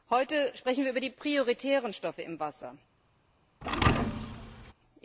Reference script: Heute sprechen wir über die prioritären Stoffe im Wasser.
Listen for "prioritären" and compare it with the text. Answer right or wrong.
right